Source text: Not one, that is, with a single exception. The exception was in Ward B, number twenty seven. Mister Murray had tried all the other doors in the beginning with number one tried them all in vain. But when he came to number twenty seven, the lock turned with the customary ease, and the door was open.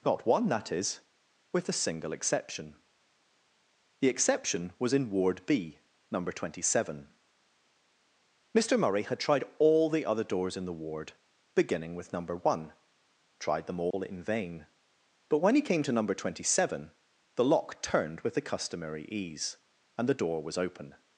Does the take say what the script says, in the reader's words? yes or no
no